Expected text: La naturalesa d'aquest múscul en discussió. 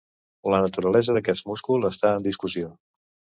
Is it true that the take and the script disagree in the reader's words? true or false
true